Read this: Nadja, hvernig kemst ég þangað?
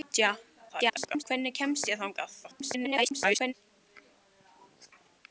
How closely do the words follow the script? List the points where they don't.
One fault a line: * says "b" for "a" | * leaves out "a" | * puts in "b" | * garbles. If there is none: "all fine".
* garbles
* garbles